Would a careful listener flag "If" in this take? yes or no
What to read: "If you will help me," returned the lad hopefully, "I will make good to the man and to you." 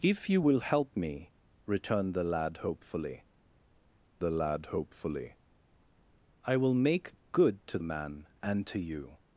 no